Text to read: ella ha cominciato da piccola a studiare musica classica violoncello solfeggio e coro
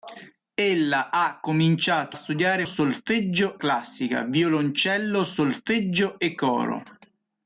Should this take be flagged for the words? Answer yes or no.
yes